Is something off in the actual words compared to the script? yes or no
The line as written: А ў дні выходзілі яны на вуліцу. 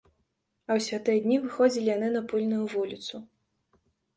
yes